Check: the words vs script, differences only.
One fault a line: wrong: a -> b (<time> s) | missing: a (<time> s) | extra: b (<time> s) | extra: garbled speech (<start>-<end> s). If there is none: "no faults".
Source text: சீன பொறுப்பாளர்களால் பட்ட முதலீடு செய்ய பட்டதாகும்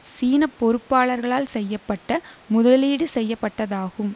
extra: செய்ய (1.5 s)